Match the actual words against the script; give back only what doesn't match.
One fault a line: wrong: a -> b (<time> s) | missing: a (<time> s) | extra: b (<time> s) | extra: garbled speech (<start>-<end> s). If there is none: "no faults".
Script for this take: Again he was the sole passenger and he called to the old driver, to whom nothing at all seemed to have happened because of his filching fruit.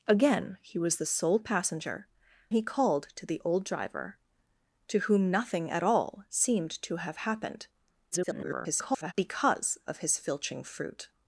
missing: and (2.1 s)
extra: garbled speech (8.1-9.1 s)